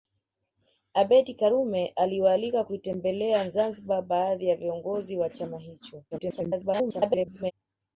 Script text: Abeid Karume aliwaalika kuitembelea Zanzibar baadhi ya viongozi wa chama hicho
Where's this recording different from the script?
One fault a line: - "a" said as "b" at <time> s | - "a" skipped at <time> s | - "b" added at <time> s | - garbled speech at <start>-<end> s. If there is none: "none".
- garbled speech at 6.1-7.5 s